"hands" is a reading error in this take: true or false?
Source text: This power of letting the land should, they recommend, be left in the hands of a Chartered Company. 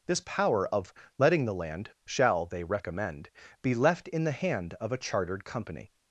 true